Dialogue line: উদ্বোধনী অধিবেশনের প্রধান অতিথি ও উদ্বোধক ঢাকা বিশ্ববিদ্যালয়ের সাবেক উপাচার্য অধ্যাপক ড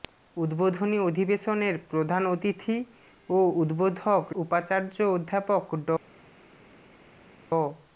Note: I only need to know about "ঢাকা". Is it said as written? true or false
false